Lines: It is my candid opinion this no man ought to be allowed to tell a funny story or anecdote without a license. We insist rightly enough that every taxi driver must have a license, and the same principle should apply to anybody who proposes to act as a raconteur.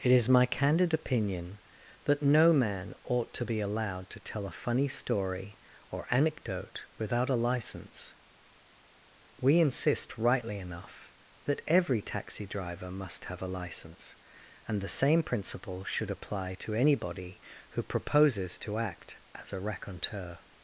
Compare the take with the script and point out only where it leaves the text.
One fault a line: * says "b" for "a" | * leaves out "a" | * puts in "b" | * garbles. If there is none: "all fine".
* says "that" for "this"